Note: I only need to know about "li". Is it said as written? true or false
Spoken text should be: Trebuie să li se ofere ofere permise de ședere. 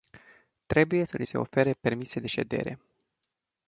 true